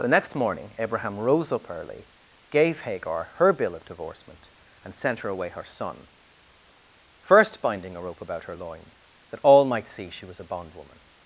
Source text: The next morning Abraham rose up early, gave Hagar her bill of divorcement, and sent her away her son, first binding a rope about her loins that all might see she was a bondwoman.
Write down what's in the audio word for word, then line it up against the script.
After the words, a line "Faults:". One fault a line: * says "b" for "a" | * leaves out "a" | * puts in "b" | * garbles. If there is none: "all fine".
The next morning Abraham rose up early, gave Hagar her bill of divorcement, and sent her away her son, first binding a rope about her loins that all might see she was a bondwoman.
Faults:
all fine